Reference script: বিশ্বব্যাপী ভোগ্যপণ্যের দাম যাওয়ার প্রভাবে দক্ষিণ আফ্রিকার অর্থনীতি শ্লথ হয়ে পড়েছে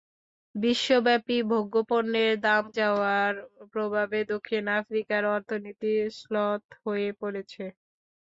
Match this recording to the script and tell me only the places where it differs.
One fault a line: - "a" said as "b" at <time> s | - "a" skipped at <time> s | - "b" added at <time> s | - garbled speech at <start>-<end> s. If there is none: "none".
none